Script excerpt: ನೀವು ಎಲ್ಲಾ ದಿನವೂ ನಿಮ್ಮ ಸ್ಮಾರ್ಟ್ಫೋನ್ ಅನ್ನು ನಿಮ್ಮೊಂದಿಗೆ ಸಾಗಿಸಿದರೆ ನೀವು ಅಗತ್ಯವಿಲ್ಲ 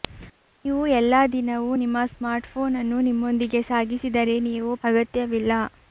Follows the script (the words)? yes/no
yes